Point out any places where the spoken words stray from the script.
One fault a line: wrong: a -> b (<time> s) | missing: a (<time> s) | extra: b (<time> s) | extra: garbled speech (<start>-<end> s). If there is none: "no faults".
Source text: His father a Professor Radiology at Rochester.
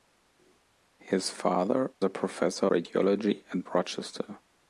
no faults